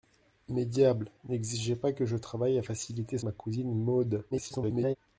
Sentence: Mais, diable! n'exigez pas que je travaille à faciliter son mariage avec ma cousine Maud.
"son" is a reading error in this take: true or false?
true